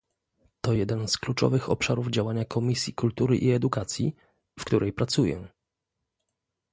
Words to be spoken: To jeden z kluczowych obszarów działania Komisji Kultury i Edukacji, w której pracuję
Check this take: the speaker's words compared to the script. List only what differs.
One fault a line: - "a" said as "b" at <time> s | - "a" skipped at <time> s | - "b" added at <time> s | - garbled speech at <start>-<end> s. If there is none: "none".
none